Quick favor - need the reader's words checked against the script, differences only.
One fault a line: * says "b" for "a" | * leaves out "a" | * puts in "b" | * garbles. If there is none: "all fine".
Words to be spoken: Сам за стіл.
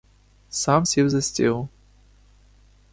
* puts in "сів"